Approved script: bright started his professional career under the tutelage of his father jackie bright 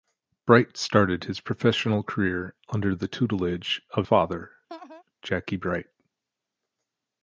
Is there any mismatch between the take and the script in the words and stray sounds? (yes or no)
yes